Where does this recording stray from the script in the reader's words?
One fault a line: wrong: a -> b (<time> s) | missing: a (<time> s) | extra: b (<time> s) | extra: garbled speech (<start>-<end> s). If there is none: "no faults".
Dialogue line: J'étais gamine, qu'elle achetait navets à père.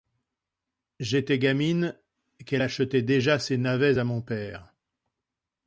extra: déjà ses (3.0 s)
extra: mon (4.0 s)